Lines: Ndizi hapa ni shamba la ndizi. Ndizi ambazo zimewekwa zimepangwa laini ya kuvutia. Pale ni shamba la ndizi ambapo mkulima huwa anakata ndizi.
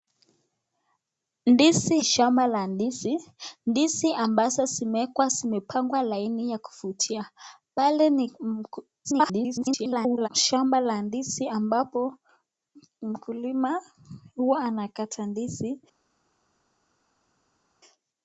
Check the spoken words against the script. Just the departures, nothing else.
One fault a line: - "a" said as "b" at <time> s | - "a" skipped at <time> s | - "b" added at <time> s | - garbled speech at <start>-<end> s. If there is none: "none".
- "hapa ni" skipped at 2.0 s
- garbled speech at 9.0-10.3 s